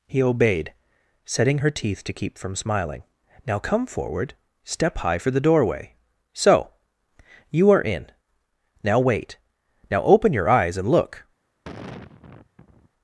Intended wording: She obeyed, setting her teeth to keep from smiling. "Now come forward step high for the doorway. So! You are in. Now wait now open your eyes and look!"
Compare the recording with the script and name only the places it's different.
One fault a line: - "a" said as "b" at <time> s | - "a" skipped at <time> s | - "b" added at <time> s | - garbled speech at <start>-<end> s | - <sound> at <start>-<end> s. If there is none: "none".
- "She" said as "He" at 0.1 s
- sigh at 11.6-12.9 s